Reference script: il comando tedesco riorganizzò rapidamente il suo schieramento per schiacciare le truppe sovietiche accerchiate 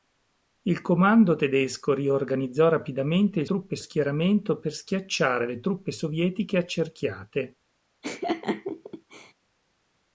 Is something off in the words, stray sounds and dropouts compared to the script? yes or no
yes